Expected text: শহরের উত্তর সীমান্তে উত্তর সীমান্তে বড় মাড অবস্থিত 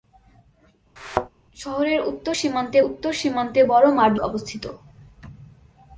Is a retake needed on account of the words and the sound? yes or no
yes